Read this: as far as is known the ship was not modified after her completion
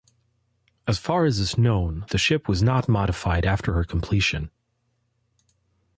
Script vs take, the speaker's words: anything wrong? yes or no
no